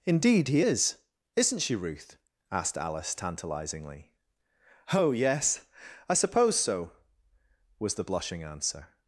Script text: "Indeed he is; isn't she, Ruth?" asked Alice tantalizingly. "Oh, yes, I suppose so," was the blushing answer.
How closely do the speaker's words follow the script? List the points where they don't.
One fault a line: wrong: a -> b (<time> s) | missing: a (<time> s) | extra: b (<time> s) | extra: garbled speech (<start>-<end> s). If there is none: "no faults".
no faults